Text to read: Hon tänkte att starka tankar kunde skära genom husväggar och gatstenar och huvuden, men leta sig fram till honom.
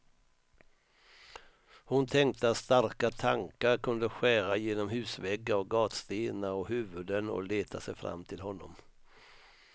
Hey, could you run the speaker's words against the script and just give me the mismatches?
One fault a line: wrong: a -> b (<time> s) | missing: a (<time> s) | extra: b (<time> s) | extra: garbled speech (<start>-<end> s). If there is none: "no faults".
wrong: men -> och (7.3 s)